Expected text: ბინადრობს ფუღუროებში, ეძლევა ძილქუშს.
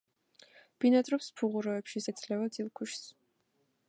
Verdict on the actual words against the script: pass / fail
pass